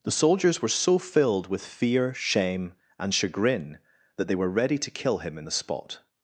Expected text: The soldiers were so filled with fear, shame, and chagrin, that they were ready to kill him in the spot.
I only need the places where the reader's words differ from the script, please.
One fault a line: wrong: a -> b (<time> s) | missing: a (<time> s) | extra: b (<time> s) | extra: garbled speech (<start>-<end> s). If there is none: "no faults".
no faults